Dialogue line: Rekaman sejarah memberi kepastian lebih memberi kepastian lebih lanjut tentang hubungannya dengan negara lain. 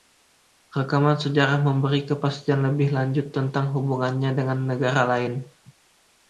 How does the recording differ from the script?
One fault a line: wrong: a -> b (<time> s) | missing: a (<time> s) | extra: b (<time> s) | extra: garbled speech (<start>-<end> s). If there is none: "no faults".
missing: memberi kepastian lebih (2.9 s)